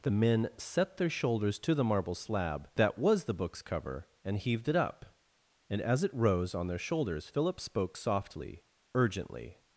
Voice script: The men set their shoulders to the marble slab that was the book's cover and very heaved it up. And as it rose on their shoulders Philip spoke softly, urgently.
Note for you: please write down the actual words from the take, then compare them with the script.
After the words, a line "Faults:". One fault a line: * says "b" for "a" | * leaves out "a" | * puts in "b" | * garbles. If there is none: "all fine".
The men set their shoulders to the marble slab that was the book's cover and heaved it up. And as it rose on their shoulders Philip spoke softly, urgently.
Faults:
* leaves out "very"